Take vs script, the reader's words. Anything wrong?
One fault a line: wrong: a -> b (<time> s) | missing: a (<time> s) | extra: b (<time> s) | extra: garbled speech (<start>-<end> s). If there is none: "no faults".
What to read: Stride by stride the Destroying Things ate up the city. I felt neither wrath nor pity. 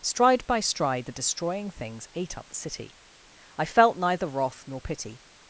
no faults